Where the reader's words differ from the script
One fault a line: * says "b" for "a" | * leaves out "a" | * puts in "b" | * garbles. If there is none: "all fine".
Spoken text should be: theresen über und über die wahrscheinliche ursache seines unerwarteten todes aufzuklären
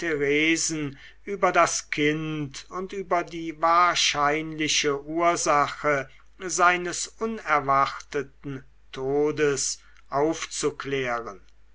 * puts in "das kind"